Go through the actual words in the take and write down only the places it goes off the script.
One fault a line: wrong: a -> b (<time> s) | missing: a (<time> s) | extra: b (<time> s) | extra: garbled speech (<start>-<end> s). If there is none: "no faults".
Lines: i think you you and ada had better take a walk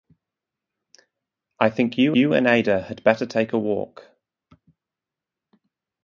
no faults